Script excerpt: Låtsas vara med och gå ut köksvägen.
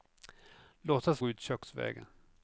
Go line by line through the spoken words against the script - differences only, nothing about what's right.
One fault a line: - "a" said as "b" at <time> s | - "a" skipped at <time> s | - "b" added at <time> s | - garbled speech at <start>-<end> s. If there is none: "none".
- "vara med och" skipped at 1.2 s